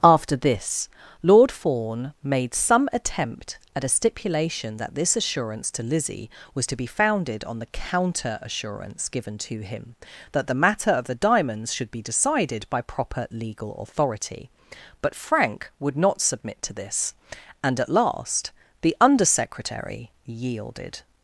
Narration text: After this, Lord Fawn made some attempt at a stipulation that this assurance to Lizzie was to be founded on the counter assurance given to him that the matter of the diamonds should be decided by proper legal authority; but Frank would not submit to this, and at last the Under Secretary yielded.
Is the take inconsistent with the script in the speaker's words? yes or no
no